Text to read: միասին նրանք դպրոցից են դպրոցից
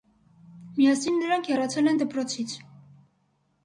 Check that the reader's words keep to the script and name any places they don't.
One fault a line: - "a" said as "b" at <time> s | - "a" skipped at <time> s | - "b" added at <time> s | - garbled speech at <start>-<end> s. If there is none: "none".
- "դպրոցից" said as "հեռացել" at 1.5 s